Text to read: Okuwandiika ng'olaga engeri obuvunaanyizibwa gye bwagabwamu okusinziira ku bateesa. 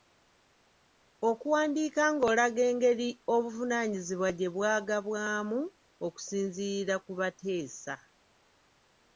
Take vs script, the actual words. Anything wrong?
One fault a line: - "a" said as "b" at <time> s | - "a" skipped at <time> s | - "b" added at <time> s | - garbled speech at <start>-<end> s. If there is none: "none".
none